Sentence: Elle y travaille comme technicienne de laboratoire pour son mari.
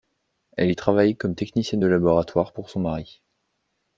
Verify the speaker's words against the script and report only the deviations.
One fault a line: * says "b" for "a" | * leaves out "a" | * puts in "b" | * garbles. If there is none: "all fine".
all fine